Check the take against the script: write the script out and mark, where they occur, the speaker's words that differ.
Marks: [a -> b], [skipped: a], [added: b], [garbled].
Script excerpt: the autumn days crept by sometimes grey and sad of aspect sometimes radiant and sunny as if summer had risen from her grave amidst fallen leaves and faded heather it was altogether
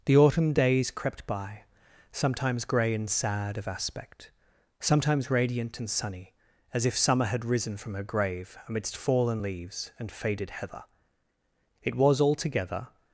the autumn days crept by sometimes grey and sad of aspect sometimes radiant and sunny as if summer had risen from her grave amidst fallen leaves and faded heather it was altogether